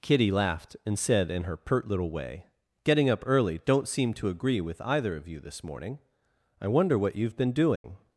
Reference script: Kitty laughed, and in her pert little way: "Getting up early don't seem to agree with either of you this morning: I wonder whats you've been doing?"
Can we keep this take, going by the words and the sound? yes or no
no